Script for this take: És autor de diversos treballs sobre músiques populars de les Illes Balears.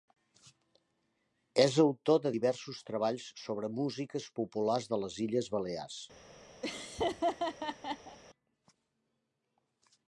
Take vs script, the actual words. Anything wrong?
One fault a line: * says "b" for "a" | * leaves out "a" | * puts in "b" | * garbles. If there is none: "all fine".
all fine